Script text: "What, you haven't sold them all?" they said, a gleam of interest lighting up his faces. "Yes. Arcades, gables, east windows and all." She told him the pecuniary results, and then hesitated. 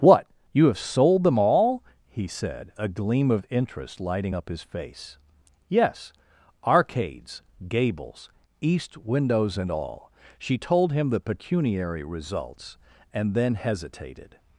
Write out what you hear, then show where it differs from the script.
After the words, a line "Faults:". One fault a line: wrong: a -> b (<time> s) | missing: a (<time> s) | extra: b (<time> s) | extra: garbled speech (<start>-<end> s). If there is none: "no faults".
"What, you have sold them all?" he said, a gleam of interest lighting up his face. "Yes. Arcades, gables, east windows and all." She told him the pecuniary results, and then hesitated.
Faults:
wrong: haven't -> have (0.7 s)
wrong: they -> he (2.1 s)
wrong: faces -> face (4.6 s)